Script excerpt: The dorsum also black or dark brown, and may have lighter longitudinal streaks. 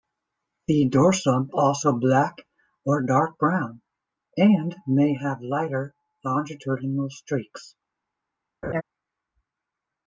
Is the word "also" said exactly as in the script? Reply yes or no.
yes